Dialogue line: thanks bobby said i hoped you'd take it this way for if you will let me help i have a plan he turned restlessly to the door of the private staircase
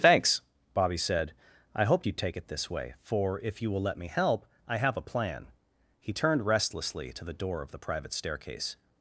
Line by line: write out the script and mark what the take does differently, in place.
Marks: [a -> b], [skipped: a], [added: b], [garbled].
thanks bobby said i hoped you'd take it this way for if you will let me help i have a plan he turned restlessly to the door of the private staircase